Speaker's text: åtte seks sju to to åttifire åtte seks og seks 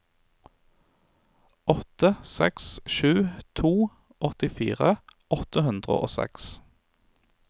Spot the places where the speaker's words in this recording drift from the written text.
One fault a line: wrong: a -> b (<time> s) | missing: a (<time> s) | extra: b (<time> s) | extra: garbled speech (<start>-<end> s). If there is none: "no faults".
missing: to (3.7 s)
wrong: seks -> hundre (5.7 s)